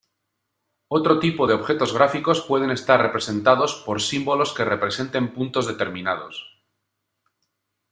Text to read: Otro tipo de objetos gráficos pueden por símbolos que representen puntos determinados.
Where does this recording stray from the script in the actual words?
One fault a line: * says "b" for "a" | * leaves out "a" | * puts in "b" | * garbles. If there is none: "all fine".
* puts in "estar representados"